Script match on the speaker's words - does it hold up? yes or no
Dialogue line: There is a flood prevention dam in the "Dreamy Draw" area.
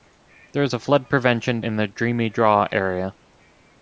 no